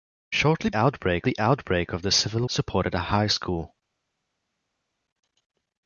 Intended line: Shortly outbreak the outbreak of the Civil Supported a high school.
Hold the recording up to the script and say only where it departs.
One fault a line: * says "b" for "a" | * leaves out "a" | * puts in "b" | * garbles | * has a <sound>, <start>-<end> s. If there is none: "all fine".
all fine